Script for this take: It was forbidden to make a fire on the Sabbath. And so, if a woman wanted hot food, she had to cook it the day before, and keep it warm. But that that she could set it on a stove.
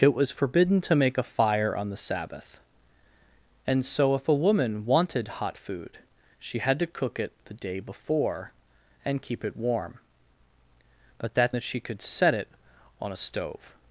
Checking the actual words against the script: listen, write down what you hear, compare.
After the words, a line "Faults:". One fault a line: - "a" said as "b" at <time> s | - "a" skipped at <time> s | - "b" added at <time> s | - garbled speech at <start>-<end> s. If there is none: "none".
It was forbidden to make a fire on the Sabbath. And so, if a woman wanted hot food, she had to cook it the day before, and keep it warm. But that that she could set it on a stove.
Faults:
none